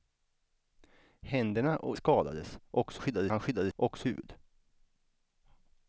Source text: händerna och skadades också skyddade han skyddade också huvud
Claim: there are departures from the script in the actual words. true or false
false